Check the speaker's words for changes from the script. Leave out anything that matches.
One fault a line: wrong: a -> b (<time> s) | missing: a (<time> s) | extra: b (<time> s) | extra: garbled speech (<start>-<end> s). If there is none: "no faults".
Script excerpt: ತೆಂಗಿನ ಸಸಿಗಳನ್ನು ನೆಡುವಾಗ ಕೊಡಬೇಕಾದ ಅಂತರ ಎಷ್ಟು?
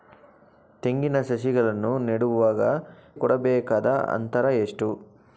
no faults